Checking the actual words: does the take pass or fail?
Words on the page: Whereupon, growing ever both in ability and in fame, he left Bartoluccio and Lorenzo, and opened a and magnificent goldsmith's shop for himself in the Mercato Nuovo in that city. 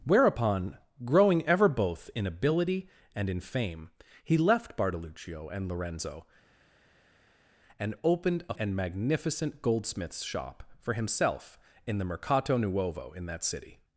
pass